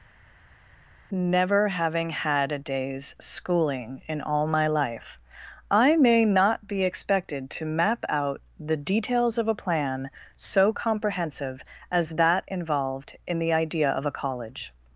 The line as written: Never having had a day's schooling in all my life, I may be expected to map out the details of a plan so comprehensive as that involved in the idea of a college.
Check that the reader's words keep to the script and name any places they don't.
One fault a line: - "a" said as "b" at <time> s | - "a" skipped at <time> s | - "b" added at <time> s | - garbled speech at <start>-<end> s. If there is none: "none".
- "not" added at 6.2 s